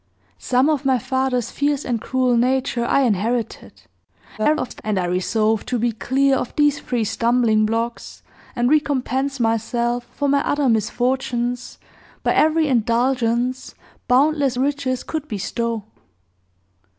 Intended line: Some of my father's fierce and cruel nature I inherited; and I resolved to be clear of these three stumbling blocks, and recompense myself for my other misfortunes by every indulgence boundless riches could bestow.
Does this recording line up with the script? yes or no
no